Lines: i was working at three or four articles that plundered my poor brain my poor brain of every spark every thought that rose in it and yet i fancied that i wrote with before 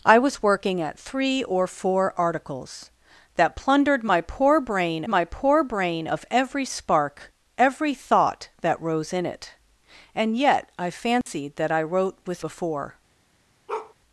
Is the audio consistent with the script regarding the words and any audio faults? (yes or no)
no